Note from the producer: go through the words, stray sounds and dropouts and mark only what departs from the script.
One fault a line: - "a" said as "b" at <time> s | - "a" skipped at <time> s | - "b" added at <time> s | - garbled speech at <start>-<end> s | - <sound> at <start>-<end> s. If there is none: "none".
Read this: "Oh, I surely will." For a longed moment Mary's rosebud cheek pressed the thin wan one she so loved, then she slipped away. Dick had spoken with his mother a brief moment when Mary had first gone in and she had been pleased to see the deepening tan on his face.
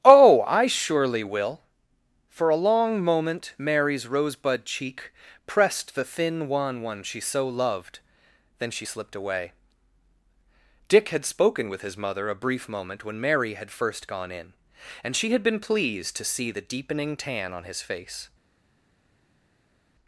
- "longed" said as "long" at 2.5 s